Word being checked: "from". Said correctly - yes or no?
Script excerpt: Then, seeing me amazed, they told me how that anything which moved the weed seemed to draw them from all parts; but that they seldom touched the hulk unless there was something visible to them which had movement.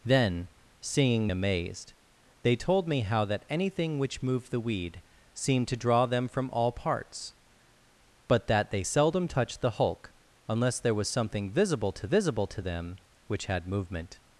yes